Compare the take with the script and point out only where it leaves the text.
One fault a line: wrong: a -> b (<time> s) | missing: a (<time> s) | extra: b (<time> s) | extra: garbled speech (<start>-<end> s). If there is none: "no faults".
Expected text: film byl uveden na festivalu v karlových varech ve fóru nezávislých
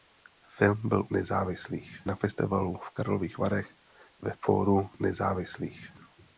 wrong: uveden -> nezávislých (1.1 s)